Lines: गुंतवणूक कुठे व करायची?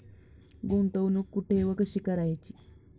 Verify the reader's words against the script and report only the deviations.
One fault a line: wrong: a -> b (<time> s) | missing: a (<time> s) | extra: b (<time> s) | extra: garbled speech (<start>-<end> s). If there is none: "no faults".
extra: कशी (1.8 s)